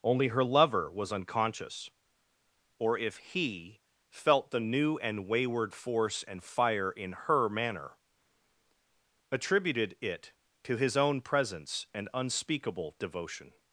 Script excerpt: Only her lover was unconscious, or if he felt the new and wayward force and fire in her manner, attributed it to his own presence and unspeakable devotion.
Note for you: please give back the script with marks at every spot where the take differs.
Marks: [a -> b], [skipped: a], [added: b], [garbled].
Only her lover was unconscious, or if he felt the new and wayward force and fire in her manner, attributed it to his own presence and unspeakable devotion.